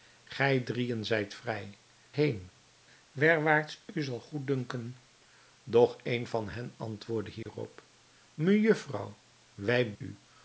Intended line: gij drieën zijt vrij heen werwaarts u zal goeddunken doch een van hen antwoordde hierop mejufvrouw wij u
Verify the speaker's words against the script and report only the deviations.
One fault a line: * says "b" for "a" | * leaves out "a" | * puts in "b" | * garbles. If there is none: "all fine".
all fine